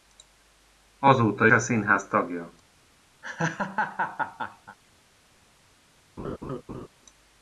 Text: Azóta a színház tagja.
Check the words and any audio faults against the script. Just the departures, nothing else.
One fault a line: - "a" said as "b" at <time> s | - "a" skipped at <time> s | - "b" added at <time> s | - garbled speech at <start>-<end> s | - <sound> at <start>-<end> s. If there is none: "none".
- laugh at 3.2-4.8 s
- laugh at 6.2-6.9 s